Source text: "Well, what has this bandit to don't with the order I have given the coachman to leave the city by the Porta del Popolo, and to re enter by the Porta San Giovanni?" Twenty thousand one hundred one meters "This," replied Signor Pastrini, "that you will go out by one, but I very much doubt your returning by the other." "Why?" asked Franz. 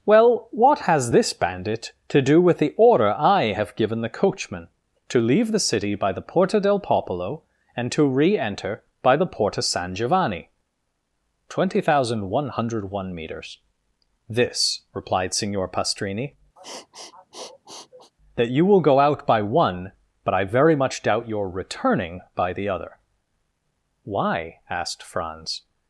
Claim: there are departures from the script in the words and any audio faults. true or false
true